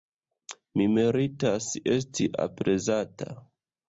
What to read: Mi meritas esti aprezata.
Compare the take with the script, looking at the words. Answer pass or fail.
pass